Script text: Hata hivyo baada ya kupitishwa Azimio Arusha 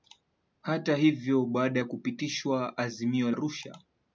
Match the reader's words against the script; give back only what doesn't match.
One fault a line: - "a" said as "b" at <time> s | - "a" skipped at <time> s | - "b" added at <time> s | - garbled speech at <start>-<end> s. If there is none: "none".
none